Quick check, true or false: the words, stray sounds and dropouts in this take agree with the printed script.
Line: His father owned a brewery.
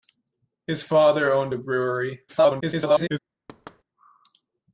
false